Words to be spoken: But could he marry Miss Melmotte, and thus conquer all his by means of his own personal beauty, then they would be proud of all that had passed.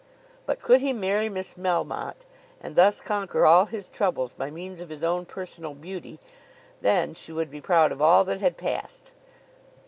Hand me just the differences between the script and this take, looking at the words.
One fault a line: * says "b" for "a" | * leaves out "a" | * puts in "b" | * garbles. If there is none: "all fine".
* puts in "troubles"
* says "she" for "they"